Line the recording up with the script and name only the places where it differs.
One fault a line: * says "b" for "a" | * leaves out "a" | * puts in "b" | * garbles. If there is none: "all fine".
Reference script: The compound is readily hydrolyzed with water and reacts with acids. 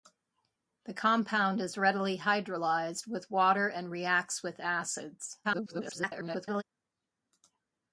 * garbles